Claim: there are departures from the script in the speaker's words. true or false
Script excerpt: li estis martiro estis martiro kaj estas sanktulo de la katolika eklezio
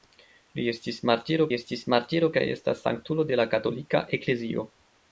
false